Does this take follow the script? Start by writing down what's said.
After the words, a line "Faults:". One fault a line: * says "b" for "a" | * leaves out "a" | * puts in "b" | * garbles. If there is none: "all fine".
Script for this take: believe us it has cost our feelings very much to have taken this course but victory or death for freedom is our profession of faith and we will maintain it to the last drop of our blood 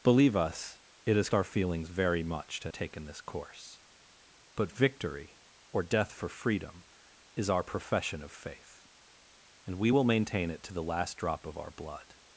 believe us it has our feelings very much to taken this course but victory or death for freedom is our profession of faith and we will maintain it to the last drop of our blood
Faults:
* leaves out "cost"
* leaves out "have"